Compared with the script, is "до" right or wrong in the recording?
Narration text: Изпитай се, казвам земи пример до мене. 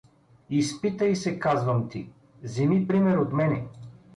wrong